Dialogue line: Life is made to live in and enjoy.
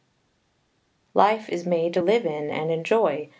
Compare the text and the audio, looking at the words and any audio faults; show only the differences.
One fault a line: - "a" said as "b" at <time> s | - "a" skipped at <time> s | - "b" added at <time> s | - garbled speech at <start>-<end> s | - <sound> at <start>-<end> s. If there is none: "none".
none